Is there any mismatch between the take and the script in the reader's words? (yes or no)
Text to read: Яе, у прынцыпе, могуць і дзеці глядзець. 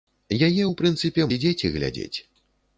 yes